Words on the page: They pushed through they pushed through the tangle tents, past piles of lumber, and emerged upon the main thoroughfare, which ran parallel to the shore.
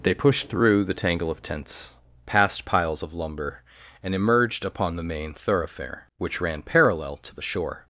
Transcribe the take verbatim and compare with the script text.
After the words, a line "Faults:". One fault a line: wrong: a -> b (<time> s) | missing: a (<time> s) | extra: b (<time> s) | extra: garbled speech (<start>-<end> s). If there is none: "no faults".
They pushed through the tangle of tents, past piles of lumber, and emerged upon the main thoroughfare, which ran parallel to the shore.
Faults:
missing: they pushed through (0.8 s)
extra: of (1.3 s)